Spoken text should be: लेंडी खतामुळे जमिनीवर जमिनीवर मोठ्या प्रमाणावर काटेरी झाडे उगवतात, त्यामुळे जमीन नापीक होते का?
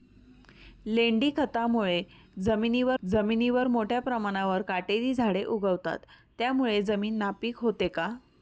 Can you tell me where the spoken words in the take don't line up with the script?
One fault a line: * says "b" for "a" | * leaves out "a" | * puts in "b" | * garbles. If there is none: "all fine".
all fine